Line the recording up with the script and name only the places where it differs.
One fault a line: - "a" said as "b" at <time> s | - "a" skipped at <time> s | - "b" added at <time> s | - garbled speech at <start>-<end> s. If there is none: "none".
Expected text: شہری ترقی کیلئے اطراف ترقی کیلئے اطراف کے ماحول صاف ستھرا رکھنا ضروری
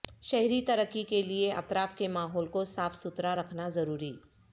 - "ترقی کیلئے اطراف" skipped at 1.9 s
- "کو" added at 2.5 s